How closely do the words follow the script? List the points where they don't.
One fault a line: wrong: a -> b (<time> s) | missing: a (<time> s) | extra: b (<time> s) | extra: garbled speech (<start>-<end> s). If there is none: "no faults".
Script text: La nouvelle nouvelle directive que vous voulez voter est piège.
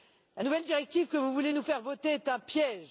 missing: nouvelle (0.6 s)
extra: nous faire (1.5 s)
extra: un (2.3 s)